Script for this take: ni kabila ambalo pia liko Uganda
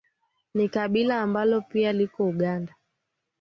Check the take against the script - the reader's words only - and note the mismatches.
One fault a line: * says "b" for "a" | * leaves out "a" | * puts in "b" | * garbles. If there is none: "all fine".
all fine